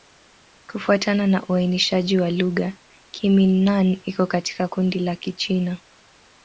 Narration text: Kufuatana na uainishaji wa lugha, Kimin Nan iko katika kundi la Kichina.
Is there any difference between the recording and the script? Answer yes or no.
no